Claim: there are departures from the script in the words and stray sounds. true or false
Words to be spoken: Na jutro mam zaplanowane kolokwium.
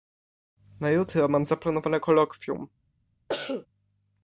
true